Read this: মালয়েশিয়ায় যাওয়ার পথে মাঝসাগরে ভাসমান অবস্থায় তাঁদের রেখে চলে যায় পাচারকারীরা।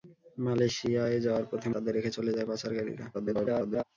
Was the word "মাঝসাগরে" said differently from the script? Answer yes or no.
yes